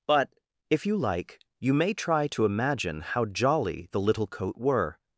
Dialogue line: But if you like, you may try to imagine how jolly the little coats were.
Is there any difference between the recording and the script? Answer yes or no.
yes